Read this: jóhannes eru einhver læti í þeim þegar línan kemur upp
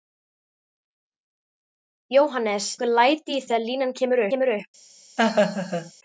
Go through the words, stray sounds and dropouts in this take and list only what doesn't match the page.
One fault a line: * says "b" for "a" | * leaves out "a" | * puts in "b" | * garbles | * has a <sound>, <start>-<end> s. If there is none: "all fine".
* leaves out "eru"
* leaves out "þeim"
* puts in "kemur"
* has a laugh, 5.2-5.9 s